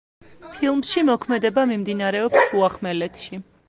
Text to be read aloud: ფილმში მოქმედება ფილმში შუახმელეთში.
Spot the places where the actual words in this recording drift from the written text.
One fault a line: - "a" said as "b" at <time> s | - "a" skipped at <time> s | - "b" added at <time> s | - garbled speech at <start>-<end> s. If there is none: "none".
- "ფილმში" said as "მიმდინარეობს" at 1.8 s